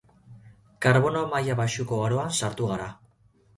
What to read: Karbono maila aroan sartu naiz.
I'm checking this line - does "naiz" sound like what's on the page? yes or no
no